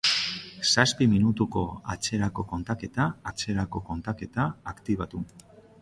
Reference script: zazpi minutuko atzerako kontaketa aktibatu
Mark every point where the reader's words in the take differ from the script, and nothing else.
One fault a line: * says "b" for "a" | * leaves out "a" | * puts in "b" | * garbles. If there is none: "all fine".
* puts in "atzerako kontaketa"